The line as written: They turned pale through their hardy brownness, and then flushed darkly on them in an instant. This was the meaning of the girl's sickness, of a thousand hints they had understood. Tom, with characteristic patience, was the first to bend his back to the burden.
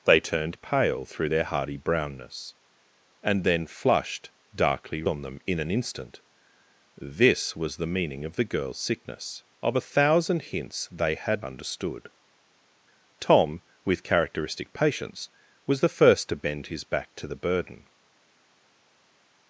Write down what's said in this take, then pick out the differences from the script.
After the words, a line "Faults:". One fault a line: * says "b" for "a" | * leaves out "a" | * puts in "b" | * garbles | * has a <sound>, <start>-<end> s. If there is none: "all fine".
They turned pale through their hardy brownness, and then flushed darkly on them in an instant. This was the meaning of the girl's sickness, of a thousand hints they had understood. Tom, with characteristic patience, was the first to bend his back to the burden.
Faults:
all fine